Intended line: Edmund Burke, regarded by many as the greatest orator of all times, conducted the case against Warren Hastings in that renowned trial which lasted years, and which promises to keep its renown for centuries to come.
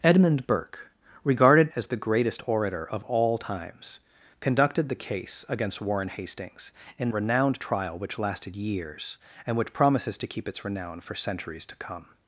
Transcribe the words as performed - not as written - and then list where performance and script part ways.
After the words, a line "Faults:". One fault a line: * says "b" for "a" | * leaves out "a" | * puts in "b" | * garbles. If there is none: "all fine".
Edmund Burke, regarded as the greatest orator of all times, conducted the case against Warren Hastings in renowned trial which lasted years, and which promises to keep its renown for centuries to come.
Faults:
* leaves out "by many"
* leaves out "that"